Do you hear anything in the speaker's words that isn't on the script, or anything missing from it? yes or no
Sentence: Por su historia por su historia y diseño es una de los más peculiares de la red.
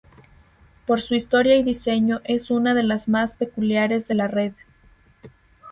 yes